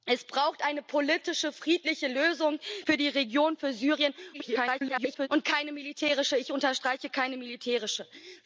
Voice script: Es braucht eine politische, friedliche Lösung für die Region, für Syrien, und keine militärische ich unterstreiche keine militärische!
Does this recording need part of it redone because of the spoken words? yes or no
yes